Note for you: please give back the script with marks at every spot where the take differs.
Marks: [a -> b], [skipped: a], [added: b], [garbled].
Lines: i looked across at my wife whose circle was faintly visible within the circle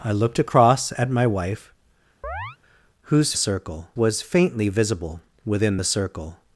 i looked across at my wife whose circle was faintly visible within the circle